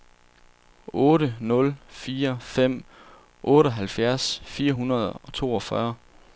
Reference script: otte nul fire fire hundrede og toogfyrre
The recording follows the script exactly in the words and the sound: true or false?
false